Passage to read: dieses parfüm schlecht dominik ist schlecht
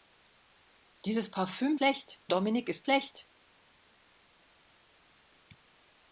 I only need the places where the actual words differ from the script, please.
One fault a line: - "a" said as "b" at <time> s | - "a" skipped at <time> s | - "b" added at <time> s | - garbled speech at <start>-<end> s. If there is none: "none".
none